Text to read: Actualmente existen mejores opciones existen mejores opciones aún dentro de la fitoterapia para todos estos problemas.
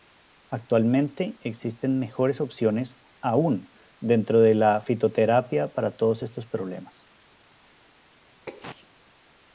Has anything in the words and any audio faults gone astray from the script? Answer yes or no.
yes